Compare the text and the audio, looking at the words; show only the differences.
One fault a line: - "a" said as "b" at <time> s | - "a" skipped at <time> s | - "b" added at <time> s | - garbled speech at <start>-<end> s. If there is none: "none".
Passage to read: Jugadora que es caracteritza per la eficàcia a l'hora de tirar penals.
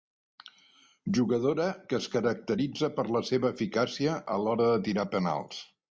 - "seva" added at 3.3 s